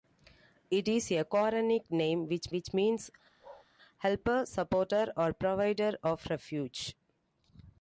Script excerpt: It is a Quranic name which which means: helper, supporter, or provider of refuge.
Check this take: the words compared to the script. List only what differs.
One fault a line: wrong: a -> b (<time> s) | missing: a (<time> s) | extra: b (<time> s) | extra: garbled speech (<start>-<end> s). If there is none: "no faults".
no faults